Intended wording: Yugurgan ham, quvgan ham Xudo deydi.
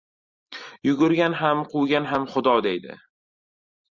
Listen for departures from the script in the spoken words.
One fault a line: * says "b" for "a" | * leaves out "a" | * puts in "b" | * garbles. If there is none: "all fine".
all fine